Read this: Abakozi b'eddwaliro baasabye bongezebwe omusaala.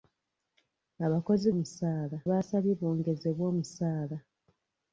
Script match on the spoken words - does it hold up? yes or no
no